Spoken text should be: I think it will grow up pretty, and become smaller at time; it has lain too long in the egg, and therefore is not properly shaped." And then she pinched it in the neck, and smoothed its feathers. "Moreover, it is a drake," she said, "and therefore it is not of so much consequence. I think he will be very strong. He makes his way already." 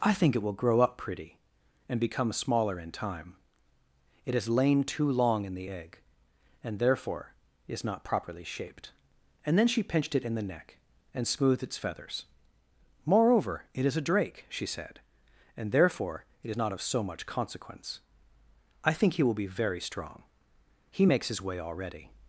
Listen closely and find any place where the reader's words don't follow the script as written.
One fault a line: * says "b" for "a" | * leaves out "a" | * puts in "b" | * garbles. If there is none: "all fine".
* says "in" for "at"